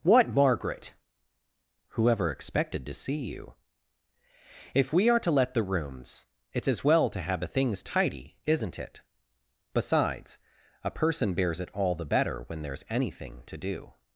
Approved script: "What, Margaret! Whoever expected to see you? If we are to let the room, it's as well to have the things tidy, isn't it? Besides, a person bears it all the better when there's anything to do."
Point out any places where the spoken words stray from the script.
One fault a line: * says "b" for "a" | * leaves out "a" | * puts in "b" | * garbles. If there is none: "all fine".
* says "rooms" for "room"